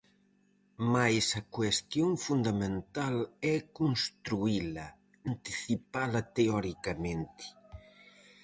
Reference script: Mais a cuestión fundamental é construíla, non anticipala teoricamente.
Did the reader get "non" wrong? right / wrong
wrong